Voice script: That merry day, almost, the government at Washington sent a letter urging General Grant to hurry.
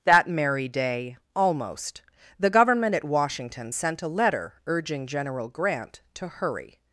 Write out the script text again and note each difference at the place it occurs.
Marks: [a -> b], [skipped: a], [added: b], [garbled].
That merry day, almost, the government at Washington sent a letter urging General Grant to hurry.